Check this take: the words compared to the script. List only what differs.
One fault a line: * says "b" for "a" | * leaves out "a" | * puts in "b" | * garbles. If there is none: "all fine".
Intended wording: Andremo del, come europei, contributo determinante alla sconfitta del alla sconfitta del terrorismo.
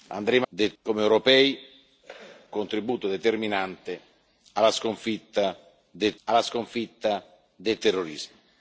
all fine